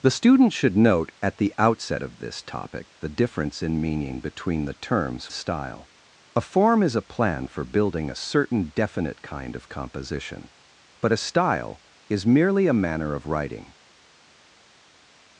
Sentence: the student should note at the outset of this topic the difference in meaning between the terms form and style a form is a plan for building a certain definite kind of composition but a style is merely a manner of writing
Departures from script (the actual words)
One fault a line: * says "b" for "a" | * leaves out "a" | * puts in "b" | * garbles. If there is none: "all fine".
* leaves out "form and"